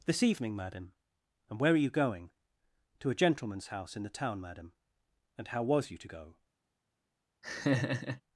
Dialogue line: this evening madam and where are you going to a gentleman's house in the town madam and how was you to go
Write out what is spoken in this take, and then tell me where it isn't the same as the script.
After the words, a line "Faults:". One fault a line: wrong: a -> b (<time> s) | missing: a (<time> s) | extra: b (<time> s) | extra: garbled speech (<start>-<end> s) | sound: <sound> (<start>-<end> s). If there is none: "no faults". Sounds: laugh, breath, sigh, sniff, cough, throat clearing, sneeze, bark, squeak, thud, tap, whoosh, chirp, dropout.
this evening madam and where are you going to a gentleman's house in the town madam and how was you to go
Faults:
sound: laugh (7.4-8.2 s)